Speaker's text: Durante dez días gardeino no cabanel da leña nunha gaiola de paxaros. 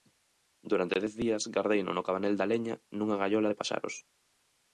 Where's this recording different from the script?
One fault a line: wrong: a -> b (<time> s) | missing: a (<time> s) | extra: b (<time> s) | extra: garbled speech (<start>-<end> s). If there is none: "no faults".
no faults